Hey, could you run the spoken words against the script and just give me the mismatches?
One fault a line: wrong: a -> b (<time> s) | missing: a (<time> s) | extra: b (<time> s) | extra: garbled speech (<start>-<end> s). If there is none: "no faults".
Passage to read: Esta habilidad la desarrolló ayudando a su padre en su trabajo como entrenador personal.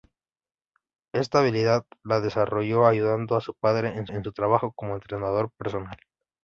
extra: en (4.1 s)